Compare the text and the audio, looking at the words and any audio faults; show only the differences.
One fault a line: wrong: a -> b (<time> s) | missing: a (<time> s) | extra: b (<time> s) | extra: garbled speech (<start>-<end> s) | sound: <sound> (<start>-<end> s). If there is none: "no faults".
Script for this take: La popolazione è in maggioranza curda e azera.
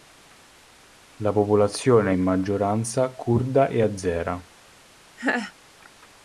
sound: laugh (5.2-5.5 s)